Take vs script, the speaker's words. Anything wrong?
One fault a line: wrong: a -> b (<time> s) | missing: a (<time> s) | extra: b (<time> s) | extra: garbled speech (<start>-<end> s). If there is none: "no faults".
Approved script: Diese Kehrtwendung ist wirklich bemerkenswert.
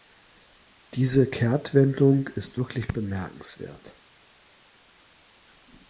no faults